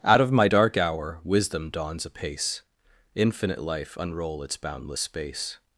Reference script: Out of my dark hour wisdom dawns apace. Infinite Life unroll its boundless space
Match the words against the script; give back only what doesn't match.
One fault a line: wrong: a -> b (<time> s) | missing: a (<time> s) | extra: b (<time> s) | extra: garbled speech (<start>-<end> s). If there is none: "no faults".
no faults